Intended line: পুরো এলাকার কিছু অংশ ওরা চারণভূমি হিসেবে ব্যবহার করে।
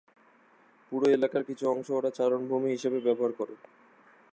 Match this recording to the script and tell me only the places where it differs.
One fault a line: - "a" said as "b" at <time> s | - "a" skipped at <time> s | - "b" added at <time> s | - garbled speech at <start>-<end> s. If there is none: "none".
none